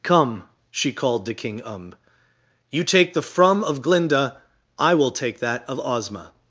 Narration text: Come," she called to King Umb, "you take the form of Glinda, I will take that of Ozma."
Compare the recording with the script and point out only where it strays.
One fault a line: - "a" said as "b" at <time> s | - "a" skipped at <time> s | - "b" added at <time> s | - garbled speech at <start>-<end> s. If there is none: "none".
- "form" said as "from" at 3.2 s